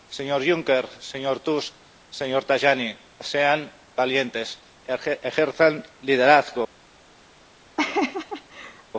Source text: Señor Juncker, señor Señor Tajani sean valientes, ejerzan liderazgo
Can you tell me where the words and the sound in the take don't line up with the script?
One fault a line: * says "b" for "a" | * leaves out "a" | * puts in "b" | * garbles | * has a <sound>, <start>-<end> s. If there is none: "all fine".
* puts in "Tusk"
* has a laugh, 7.8-8.8 s